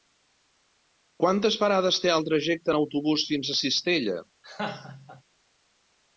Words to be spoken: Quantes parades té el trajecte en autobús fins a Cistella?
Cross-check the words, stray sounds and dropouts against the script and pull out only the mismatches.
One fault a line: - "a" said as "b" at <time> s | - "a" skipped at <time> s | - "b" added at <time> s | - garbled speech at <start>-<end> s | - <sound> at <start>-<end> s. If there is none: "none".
- laugh at 4.4-5.2 s